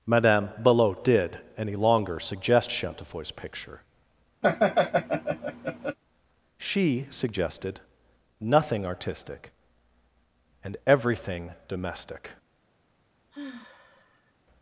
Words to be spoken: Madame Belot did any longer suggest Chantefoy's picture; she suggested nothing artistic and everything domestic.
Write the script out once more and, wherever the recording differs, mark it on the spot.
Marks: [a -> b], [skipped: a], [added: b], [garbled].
Madame Belot did any longer suggest Chantefoy's picture; she suggested nothing artistic and everything domestic.